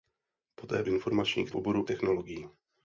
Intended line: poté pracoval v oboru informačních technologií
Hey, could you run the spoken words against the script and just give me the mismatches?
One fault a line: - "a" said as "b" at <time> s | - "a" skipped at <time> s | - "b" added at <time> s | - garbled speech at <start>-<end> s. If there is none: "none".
- "pracoval" said as "informačních" at 0.8 s
- "informačních" skipped at 1.9 s